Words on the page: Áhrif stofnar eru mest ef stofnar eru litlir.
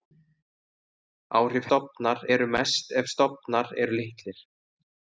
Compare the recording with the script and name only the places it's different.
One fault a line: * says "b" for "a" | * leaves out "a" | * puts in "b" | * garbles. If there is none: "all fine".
all fine